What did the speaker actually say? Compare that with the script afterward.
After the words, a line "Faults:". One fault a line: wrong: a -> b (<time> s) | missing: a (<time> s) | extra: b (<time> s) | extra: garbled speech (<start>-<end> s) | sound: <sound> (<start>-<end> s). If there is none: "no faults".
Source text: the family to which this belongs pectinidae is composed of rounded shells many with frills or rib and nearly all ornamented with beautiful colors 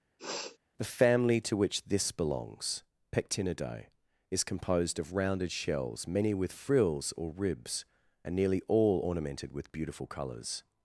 the family to which this belongs pectinidae is composed of rounded shells many with frills or ribs and nearly all ornamented with beautiful colors
Faults:
sound: sniff (0.2-0.6 s)
wrong: rib -> ribs (7.3 s)